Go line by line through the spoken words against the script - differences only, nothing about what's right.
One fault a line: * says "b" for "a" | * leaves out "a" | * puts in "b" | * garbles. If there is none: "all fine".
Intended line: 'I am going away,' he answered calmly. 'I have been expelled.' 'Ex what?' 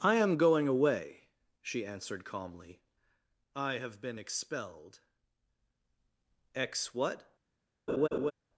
* says "she" for "he"